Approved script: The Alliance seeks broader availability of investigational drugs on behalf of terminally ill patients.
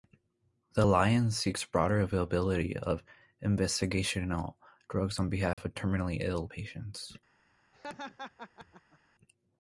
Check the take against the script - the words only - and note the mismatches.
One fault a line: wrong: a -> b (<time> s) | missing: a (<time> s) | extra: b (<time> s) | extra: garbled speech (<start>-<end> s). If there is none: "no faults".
no faults